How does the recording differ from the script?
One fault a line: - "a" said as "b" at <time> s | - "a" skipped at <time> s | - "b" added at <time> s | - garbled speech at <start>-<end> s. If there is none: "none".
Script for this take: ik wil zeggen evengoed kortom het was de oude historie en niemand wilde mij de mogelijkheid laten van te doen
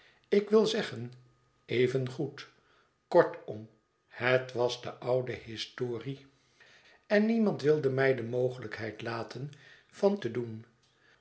none